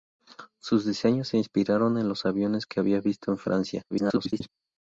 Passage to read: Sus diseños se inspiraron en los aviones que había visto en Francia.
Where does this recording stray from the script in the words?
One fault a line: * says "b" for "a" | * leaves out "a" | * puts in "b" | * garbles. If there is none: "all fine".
* garbles